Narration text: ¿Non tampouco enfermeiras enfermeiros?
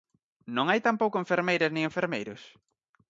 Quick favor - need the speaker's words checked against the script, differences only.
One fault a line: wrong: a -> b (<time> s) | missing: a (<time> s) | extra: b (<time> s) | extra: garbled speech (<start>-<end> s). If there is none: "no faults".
extra: hai (0.7 s)
extra: nin (1.7 s)